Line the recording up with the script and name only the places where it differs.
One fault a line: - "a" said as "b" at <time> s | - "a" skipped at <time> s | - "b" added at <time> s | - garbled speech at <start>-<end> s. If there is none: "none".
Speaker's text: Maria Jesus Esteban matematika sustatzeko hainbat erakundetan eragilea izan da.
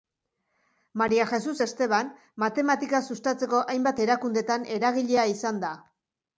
none